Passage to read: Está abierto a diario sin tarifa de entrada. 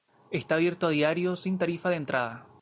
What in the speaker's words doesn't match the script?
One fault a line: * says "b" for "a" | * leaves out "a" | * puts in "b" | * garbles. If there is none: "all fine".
all fine